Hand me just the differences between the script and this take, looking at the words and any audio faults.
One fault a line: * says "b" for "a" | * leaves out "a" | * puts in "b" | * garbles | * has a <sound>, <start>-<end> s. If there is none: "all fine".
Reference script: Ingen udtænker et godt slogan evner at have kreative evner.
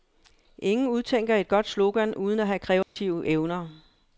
* says "uden" for "evner"
* has a dropout, 2.8-3.0 s